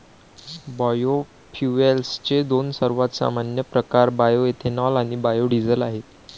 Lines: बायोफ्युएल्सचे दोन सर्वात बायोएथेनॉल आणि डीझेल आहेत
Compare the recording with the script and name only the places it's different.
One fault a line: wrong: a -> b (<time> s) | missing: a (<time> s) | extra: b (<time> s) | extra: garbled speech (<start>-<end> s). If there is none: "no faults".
extra: सामान्य प्रकार (3.1 s)
extra: बायो (5.2 s)